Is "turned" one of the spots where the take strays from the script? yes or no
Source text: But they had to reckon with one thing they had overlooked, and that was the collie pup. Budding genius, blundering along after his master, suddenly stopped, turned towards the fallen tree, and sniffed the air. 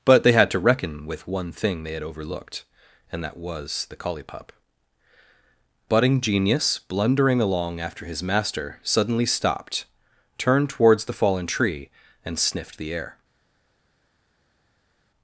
no